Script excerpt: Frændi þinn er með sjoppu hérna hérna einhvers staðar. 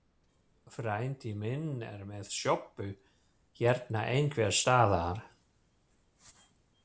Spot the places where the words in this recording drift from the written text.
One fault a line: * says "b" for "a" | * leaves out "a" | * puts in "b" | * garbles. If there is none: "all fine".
* says "minn" for "þinn"
* leaves out "hérna"